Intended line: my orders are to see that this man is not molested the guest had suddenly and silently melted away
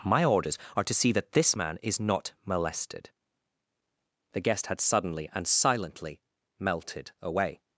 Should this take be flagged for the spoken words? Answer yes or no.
no